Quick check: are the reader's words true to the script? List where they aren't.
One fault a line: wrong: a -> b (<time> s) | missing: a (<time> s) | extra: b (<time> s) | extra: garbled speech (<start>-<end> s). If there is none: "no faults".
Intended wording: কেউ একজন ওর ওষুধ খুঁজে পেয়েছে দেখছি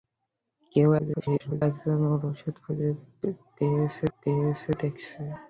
extra: garbled speech (1.0-1.6 s)
extra: পেয়েছে (4.2 s)